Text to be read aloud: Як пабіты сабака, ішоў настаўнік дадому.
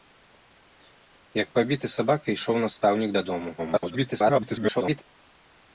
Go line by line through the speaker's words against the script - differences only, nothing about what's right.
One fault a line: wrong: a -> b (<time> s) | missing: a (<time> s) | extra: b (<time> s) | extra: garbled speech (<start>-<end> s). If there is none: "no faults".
extra: garbled speech (3.6-5.0 s)